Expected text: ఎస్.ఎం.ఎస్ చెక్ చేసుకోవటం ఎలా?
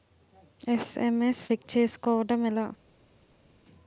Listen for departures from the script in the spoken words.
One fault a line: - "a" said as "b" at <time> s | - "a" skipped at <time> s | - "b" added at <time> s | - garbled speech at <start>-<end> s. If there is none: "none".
none